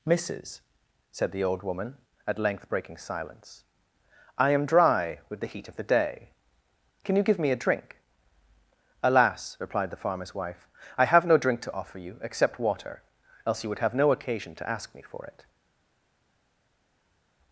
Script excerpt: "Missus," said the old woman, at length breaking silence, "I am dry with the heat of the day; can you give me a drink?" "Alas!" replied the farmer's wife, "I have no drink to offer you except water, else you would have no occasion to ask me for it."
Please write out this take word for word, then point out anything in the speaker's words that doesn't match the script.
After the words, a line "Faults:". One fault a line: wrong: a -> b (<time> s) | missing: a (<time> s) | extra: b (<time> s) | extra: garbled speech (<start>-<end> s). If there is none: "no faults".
"Missus," said the old woman, at length breaking silence, "I am dry with the heat of the day; can you give me a drink?" "Alas!" replied the farmer's wife, "I have no drink to offer you except water, else you would have no occasion to ask me for it."
Faults:
no faults